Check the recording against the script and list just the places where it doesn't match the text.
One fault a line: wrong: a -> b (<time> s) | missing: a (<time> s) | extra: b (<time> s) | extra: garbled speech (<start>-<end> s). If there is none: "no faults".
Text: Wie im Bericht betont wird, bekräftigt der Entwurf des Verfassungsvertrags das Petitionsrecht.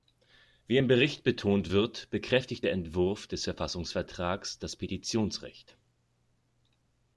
no faults